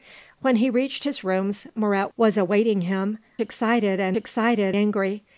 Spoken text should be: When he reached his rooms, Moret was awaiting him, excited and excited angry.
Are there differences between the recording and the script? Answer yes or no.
no